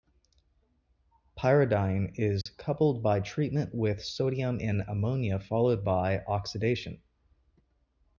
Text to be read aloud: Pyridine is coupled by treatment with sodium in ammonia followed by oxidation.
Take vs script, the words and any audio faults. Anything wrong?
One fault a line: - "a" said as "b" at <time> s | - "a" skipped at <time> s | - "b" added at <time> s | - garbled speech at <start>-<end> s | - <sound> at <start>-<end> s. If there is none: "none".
- dropout at 2.4-2.5 s